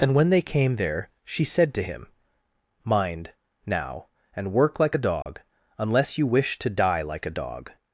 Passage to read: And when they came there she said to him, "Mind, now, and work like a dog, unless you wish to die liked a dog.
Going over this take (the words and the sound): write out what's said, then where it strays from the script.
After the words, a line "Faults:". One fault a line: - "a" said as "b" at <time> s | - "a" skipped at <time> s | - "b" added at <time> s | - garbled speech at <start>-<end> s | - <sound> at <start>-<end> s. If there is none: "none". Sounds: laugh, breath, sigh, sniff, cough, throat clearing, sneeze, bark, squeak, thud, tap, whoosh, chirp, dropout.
And when they came there she said to him, "Mind, now, and work like a dog, unless you wish to die like a dog.
Faults:
- dropout at 5.2-5.3 s
- "liked" said as "like" at 7.0 s